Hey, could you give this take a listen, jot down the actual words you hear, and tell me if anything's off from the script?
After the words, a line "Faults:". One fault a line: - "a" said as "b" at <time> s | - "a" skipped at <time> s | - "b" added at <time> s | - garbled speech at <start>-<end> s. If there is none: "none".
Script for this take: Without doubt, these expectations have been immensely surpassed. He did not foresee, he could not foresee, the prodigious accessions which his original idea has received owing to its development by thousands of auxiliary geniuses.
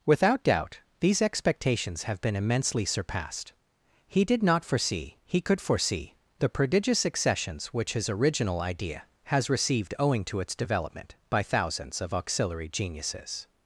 Without doubt, these expectations have been immensely surpassed. He did not foresee, he could foresee, the prodigious accessions which his original idea has received owing to its development by thousands of auxiliary geniuses.
Faults:
- "not" skipped at 5.6 s